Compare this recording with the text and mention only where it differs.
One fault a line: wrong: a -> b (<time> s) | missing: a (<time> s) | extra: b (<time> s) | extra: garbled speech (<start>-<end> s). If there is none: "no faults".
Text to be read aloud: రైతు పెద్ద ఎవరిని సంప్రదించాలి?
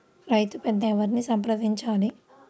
no faults